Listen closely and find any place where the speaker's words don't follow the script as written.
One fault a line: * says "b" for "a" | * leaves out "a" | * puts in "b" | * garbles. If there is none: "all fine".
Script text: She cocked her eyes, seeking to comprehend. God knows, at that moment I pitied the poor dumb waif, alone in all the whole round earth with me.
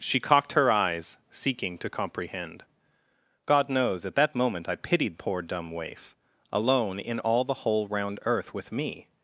* leaves out "the"